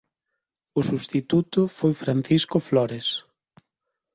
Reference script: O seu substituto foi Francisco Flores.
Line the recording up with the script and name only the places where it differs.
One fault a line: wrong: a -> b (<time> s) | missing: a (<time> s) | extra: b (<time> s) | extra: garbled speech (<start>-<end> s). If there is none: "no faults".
missing: seu (0.8 s)